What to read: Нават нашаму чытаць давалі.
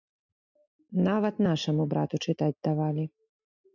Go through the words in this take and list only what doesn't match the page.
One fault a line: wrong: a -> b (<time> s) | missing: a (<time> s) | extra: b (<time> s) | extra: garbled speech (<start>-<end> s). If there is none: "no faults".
extra: брату (2.0 s)